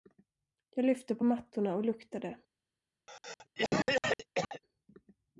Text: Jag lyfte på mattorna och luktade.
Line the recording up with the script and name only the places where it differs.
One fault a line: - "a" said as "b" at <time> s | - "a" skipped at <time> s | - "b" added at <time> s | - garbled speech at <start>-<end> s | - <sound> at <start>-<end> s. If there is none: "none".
- cough at 3.1-4.6 s